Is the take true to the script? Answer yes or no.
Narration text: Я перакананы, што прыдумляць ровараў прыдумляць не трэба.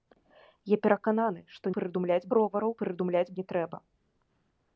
yes